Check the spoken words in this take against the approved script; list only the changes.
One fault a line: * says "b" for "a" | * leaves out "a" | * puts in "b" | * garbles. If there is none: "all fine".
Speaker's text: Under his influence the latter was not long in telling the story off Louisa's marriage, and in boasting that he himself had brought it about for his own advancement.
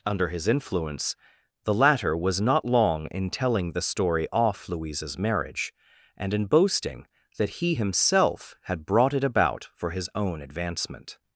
all fine